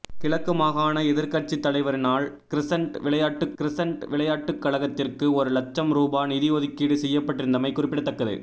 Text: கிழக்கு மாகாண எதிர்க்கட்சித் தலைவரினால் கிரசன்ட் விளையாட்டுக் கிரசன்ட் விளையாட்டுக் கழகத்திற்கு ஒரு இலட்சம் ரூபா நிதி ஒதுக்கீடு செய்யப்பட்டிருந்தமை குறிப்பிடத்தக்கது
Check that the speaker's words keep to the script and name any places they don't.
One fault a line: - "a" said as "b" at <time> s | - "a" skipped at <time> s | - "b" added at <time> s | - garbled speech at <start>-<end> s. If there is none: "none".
none